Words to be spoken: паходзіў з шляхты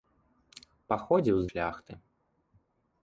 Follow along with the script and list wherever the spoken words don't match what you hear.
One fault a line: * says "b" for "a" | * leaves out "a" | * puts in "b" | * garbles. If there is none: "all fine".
all fine